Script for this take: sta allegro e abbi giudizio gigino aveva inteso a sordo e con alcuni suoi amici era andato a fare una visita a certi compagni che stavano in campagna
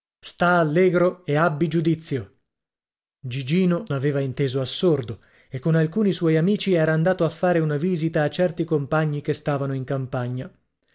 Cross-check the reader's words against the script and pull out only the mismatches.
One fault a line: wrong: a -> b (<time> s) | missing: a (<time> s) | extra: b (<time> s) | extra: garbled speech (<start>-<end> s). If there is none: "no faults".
no faults